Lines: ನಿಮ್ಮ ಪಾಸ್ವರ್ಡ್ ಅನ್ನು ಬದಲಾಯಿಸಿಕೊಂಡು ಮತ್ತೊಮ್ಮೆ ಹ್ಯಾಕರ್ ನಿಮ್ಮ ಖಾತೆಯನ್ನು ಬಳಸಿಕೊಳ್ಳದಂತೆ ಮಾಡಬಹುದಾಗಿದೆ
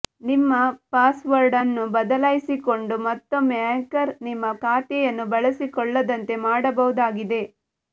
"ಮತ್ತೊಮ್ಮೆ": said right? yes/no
yes